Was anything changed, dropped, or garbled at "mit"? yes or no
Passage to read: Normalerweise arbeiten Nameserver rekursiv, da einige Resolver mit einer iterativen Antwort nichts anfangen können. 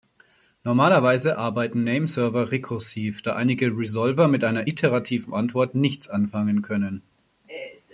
no